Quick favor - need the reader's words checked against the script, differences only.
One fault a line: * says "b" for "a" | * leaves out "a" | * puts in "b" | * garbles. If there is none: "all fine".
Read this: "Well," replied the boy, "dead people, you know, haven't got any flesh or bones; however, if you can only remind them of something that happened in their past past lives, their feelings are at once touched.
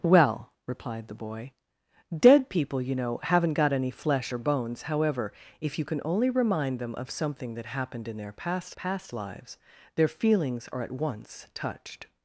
all fine